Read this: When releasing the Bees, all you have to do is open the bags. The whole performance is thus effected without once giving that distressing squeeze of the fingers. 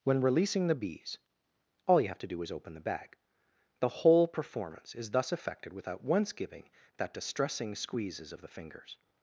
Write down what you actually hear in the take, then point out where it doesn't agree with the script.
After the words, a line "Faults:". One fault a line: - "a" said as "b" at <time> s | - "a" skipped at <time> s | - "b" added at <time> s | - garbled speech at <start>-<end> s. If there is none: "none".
When releasing the Bees, all you have to do is open the bag. The whole performance is thus effected without once giving that distressing squeezes of the fingers.
Faults:
- "bags" said as "bag" at 2.8 s
- "squeeze" said as "squeezes" at 7.8 s